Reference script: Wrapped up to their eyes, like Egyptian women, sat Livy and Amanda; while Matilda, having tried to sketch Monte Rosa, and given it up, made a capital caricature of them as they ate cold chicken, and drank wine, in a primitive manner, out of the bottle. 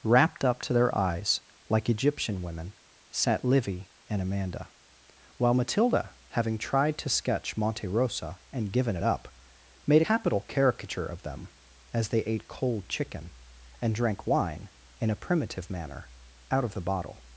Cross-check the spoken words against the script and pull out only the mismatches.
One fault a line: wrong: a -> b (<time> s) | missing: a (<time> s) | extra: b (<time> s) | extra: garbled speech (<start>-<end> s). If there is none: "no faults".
missing: a (10.0 s)